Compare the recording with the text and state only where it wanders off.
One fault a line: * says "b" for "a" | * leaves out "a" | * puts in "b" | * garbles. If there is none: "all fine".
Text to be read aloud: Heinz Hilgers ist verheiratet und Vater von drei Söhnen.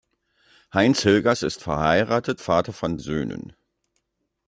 * leaves out "und"
* leaves out "drei"